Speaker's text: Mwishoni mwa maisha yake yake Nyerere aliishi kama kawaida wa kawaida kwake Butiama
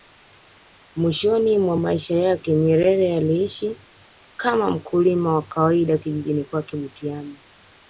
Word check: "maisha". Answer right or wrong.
right